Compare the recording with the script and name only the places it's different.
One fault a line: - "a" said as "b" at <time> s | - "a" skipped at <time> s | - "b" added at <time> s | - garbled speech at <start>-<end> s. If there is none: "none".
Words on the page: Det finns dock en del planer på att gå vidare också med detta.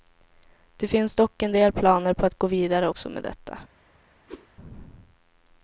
none